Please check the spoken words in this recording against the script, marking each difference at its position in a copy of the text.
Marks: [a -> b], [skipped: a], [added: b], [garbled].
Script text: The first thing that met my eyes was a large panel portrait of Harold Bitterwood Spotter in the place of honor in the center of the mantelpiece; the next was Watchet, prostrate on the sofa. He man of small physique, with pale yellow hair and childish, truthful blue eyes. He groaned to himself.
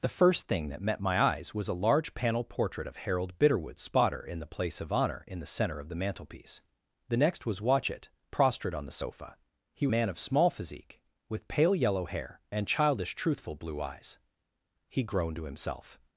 The first thing that met my eyes was a large panel portrait of Harold Bitterwood Spotter in the place of honor in the center of the mantelpiece; the next was Watchet, prostrate on the sofa. He man of small physique, with pale yellow hair and childish, truthful blue eyes. He groaned to himself.